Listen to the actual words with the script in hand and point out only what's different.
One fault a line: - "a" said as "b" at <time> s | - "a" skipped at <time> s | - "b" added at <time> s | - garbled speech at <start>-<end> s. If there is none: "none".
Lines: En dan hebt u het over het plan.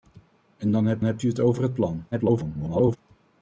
- "hebt" added at 1.0 s
- garbled speech at 2.1-3.0 s